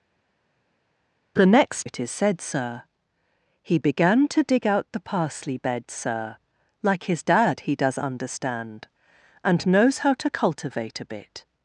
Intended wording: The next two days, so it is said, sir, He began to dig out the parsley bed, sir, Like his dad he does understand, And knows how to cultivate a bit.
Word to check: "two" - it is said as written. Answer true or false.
false